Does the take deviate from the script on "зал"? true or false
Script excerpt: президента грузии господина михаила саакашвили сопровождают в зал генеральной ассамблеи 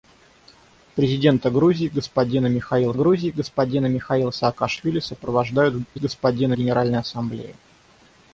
true